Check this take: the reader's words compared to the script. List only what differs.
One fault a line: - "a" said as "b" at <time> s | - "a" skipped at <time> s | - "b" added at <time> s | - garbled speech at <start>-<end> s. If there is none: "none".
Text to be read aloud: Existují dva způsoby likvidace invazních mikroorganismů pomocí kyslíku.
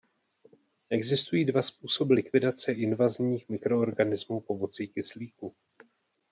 none